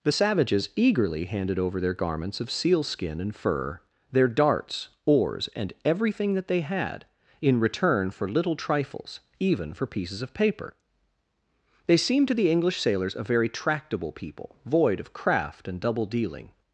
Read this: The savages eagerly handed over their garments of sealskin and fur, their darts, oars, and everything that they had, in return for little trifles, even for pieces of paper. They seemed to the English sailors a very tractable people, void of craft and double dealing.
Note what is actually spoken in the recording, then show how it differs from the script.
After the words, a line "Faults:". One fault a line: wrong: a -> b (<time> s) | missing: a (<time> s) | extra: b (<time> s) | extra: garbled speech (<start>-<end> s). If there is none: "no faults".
The savages eagerly handed over their garments of sealskin and fur, their darts, oars, and everything that they had, in return for little trifles, even for pieces of paper. They seemed to the English sailors a very tractable people, void of craft and double dealing.
Faults:
no faults